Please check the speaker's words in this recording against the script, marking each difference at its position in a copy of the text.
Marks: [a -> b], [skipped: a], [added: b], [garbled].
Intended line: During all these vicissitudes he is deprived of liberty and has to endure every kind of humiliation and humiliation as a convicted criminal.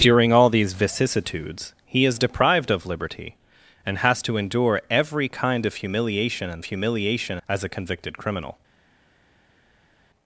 During all these vicissitudes he is deprived of liberty and has to endure every kind of humiliation and humiliation as a convicted criminal.